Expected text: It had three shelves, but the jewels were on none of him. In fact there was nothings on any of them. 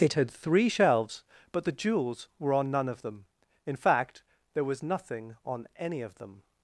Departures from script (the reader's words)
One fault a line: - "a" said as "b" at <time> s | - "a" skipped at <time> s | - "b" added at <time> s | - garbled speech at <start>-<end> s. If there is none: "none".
- "him" said as "them" at 3.0 s
- "nothings" said as "nothing" at 4.8 s